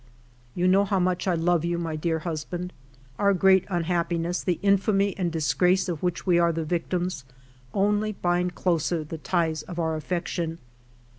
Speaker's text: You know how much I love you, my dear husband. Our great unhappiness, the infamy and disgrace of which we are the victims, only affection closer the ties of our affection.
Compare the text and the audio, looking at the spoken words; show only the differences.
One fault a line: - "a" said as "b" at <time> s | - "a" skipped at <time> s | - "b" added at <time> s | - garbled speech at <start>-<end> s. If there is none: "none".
- "affection" said as "bind" at 8.1 s